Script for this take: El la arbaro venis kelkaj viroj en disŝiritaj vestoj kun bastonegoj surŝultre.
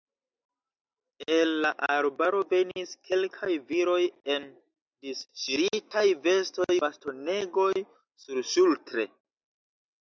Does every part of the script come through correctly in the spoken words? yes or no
no